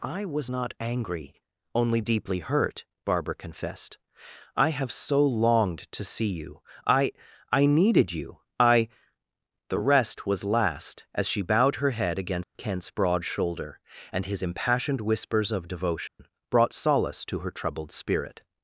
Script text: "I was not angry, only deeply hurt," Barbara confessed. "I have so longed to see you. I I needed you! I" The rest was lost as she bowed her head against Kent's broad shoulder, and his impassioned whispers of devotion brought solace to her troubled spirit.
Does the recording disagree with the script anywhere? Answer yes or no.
yes